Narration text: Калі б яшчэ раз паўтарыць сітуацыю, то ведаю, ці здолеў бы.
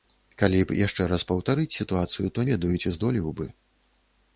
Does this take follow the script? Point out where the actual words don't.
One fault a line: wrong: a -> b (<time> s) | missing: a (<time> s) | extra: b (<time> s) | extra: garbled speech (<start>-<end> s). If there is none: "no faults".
no faults